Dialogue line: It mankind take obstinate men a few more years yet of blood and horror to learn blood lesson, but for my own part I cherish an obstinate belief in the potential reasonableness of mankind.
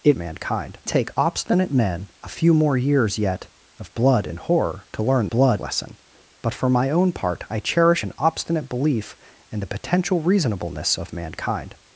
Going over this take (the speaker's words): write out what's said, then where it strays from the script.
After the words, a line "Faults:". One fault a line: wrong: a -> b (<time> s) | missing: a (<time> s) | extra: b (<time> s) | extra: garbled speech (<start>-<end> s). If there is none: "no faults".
It mankind take obstinate men a few more years yet of blood and horror to learn blood lesson, but for my own part I cherish an obstinate belief in the potential reasonableness of mankind.
Faults:
no faults